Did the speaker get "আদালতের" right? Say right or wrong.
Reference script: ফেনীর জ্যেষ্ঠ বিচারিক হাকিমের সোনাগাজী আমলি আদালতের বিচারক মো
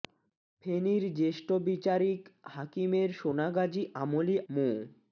wrong